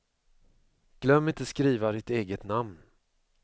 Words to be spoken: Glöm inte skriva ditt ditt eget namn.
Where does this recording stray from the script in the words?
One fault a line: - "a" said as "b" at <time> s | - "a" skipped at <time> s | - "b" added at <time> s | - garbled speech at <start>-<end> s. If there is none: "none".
- "ditt" skipped at 2.1 s